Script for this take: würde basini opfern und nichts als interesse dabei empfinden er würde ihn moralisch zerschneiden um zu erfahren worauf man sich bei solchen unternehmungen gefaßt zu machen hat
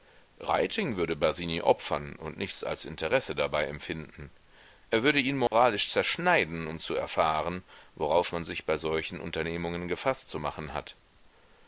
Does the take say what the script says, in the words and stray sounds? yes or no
no